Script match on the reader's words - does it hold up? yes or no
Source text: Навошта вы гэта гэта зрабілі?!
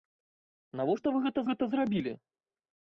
yes